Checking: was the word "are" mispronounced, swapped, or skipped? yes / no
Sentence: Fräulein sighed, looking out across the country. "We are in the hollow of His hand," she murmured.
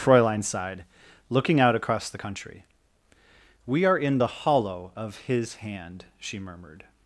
no